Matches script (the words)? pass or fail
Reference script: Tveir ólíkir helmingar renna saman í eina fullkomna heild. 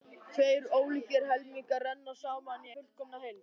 fail